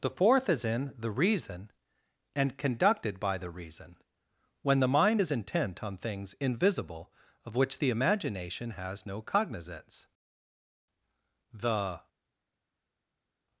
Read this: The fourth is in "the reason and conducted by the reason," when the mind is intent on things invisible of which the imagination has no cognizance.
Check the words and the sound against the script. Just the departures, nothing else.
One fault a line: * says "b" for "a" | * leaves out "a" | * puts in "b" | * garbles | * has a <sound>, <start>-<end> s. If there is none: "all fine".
* puts in "The"